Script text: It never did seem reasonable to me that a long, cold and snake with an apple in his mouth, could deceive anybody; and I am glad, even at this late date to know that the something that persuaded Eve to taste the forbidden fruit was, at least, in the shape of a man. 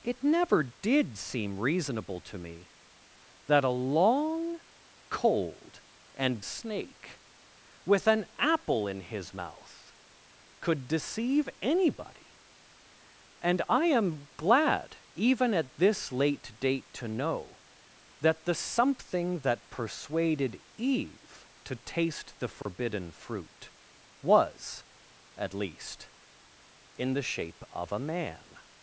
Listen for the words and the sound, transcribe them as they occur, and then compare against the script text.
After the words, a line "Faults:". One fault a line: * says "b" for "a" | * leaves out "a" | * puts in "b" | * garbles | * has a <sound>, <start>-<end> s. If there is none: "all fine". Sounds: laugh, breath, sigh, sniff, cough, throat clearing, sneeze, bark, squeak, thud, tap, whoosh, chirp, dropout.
It never did seem reasonable to me that a long, cold and snake with an apple in his mouth, could deceive anybody; and I am glad, even at this late date to know that the something that persuaded Eve to taste the forbidden fruit was, at least, in the shape of a man.
Faults:
* has a dropout, 22.6-22.7 s